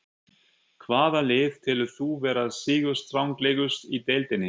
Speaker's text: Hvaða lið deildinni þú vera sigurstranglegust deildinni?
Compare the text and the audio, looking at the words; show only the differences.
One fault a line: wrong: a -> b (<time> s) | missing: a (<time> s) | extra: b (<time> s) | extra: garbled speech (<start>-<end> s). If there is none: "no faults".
wrong: deildinni -> telur (1.7 s)
extra: í (3.9 s)